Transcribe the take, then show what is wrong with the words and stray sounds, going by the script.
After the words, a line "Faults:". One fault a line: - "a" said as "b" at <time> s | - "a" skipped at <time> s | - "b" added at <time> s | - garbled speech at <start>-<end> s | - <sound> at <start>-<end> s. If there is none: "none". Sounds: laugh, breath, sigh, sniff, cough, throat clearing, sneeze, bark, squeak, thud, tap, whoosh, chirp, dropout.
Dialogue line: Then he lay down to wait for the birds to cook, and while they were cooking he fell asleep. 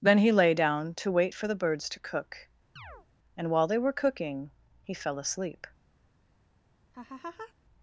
Then he lay down to wait for the birds to cook, and while they were cooking he fell asleep.
Faults:
- chirp at 2.8-3.1 s
- laugh at 6.9-7.5 s